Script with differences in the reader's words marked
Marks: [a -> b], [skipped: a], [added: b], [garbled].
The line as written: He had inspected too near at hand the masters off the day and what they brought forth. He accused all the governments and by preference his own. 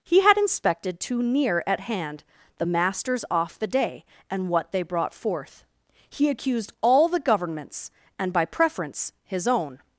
He had inspected too near at hand the masters off the day and what they brought forth. He accused all the governments and by preference his own.